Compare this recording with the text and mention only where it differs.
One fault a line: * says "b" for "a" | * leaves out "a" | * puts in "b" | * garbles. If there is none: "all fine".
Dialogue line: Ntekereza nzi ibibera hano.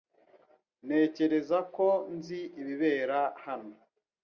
* puts in "ko"